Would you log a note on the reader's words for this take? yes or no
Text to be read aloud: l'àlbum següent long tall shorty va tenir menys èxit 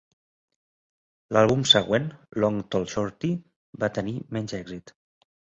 no